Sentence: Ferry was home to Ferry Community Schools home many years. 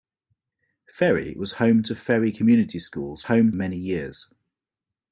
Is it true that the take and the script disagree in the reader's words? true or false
false